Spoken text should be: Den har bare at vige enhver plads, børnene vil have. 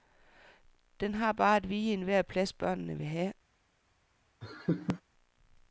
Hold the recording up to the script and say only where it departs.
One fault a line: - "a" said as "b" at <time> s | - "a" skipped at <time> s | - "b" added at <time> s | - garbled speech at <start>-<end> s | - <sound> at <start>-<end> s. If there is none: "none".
- laugh at 4.4-5.0 s